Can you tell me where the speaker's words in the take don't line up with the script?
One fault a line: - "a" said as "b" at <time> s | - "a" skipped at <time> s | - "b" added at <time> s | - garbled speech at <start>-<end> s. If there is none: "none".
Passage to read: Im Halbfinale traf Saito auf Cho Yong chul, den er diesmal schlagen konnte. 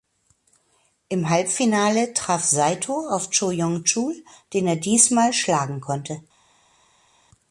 none